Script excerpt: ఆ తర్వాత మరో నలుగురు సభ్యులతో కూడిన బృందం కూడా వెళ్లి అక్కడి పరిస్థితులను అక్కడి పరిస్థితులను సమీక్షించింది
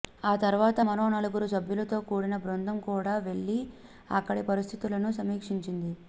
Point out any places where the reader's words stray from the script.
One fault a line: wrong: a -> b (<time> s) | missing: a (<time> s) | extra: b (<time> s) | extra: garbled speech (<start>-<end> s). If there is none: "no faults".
missing: అక్కడి పరిస్థితులను (5.1 s)